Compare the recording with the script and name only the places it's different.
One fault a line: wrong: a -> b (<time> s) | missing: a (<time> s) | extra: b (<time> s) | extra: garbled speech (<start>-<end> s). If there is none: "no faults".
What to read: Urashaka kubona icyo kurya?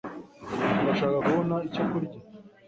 no faults